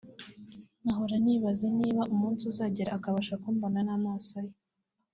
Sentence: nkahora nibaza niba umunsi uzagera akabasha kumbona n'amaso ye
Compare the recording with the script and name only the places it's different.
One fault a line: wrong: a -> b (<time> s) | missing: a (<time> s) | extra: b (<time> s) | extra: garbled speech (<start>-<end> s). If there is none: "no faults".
no faults